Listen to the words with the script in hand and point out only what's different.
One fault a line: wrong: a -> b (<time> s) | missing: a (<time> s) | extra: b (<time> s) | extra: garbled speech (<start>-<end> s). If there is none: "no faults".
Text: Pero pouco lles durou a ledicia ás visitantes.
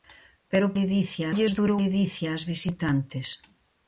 wrong: pouco -> ledicia (0.8 s)
missing: a (1.8 s)